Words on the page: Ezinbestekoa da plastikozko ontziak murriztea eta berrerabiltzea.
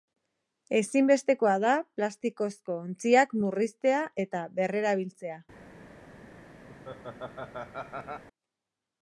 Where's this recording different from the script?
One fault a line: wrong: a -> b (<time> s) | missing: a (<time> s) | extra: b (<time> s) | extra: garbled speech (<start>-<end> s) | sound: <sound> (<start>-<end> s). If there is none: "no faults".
sound: laugh (6.7-8.2 s)